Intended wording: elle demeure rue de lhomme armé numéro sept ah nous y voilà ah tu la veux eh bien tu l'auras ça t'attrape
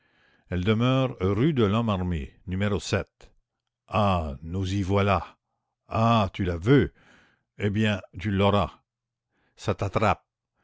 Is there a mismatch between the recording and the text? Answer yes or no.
no